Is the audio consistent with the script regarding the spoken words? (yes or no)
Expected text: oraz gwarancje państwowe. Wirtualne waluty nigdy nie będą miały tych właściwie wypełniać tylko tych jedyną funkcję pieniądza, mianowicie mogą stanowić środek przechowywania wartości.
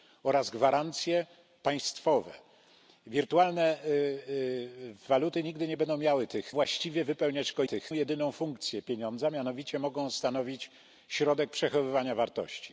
yes